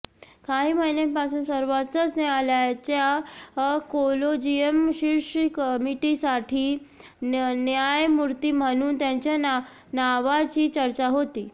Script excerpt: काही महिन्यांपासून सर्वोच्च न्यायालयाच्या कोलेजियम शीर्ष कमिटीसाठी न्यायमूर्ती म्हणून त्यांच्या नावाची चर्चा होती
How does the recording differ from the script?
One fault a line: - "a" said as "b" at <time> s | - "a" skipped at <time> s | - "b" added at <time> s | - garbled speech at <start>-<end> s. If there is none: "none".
none